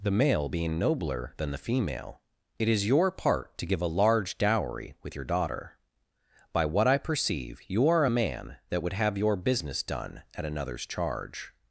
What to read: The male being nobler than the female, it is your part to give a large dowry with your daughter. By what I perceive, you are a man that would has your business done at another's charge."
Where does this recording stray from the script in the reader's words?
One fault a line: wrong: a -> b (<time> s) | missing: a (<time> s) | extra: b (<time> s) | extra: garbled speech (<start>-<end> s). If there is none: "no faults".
wrong: has -> have (8.9 s)